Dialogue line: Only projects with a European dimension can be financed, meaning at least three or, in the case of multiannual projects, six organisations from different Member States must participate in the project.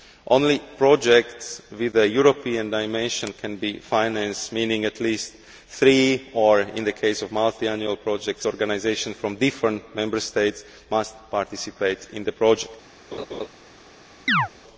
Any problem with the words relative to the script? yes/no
yes